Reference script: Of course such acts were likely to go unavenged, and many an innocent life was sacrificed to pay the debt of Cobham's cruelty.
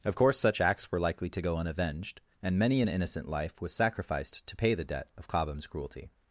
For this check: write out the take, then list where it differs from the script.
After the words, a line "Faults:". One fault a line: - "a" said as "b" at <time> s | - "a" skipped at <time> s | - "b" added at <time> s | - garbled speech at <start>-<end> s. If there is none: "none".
Of course such acts were likely to go unavenged, and many an innocent life was sacrificed to pay the debt of Cobham's cruelty.
Faults:
none